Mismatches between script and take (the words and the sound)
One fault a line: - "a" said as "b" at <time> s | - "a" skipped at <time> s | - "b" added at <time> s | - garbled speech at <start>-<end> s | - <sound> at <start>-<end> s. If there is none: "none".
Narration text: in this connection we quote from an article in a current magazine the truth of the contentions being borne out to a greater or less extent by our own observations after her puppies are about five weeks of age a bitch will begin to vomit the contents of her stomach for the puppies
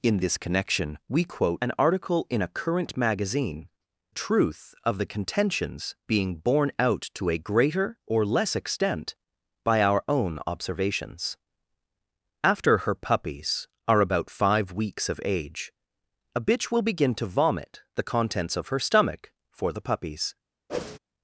- "from" skipped at 1.6 s
- "the" skipped at 3.7 s
- whoosh at 20.7-21.0 s